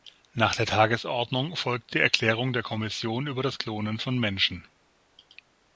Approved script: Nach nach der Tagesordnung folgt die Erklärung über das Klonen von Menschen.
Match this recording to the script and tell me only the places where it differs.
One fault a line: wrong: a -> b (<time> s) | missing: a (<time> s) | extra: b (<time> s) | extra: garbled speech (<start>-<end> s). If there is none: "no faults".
missing: nach (0.6 s)
extra: der Kommission (2.5 s)